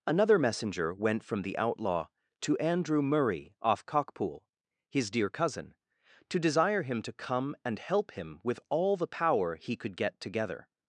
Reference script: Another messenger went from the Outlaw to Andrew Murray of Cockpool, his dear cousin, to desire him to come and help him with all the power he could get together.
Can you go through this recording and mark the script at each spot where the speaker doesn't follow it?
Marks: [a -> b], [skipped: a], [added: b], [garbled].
Another messenger went from the Outlaw to Andrew Murray [of -> off] Cockpool, his dear cousin, to desire him to come and help him with all the power he could get together.